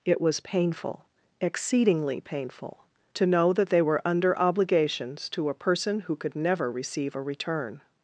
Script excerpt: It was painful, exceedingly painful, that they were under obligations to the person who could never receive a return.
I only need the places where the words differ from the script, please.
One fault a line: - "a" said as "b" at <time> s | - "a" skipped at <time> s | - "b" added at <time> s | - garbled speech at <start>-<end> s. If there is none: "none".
- "to know" added at 3.2 s
- "the" said as "a" at 5.5 s